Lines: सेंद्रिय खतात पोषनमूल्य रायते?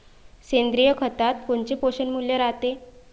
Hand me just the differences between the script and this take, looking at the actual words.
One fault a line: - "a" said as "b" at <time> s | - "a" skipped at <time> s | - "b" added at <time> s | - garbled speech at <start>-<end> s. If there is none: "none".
- "कोनचे" added at 1.5 s